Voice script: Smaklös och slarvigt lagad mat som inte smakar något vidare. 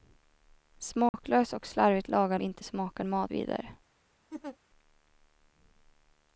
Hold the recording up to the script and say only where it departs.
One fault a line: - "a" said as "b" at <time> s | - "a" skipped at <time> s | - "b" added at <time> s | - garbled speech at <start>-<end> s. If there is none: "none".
- "mat som" skipped at 2.4 s
- "något" said as "mat" at 3.0 s